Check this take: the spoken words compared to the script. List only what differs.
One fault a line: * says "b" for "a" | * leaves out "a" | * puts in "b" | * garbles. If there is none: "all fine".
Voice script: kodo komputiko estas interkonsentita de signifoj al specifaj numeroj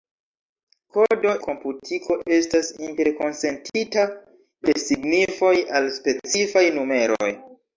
all fine